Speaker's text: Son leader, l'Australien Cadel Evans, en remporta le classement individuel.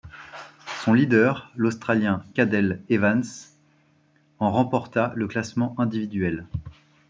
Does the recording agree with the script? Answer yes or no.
yes